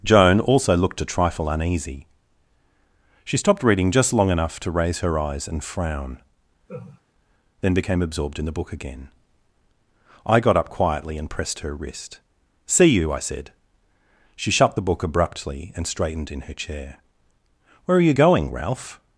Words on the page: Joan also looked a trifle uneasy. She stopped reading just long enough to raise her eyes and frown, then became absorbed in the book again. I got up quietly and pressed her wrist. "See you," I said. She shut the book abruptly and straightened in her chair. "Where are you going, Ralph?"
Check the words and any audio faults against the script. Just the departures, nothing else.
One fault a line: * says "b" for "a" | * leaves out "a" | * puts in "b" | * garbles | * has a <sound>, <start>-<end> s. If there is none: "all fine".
* has a laugh, 6.7-7.0 s